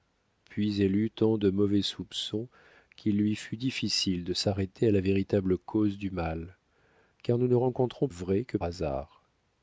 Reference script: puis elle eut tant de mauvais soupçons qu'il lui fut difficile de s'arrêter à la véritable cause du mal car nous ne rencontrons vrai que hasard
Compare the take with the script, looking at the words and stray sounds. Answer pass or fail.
pass